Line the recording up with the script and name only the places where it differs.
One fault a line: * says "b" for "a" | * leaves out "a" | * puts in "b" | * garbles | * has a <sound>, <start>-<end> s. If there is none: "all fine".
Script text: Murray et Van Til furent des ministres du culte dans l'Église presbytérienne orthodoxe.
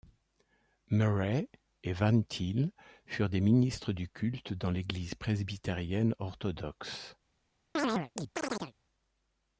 * has a chirp, 7.8-8.7 s